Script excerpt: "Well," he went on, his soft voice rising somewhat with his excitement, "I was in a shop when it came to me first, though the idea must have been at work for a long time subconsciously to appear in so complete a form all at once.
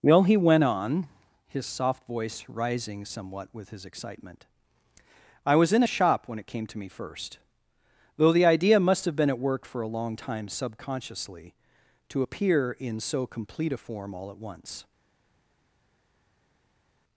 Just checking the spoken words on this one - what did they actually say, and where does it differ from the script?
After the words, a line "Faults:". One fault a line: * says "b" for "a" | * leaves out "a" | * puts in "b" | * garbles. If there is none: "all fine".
"Well," he went on, his soft voice rising somewhat with his excitement, "I was in a shop when it came to me first, though the idea must have been at work for a long time subconsciously to appear in so complete a form all at once.
Faults:
all fine